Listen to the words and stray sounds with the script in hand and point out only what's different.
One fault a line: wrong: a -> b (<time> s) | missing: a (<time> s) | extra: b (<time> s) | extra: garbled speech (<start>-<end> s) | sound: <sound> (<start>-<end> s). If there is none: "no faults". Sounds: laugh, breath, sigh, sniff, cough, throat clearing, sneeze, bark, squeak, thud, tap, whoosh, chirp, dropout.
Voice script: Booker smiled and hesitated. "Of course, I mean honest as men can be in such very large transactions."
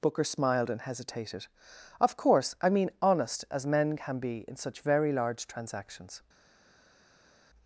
no faults